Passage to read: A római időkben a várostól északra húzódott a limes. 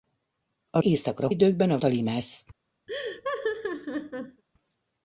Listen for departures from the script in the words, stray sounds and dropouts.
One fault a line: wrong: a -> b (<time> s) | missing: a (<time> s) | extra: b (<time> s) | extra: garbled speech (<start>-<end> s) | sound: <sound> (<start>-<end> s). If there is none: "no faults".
wrong: római -> északra (0.8 s)
missing: várostól északra húzódott (1.8 s)
sound: laugh (2.9-4.4 s)